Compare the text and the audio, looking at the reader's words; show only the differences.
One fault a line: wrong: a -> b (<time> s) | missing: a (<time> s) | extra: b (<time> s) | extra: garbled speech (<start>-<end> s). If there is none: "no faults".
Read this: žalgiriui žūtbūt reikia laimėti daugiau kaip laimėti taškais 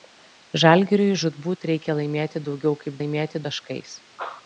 no faults